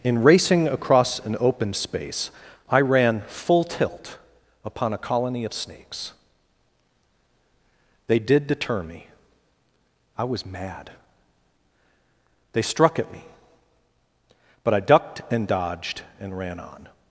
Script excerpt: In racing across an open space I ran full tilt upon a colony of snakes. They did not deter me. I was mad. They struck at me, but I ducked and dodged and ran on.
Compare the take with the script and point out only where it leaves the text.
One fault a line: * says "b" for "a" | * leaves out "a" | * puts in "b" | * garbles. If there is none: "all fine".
* leaves out "not"